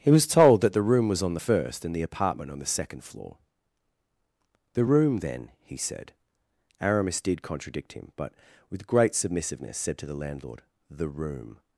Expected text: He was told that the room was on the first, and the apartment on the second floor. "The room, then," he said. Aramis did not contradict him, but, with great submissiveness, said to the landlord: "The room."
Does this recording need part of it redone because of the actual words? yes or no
yes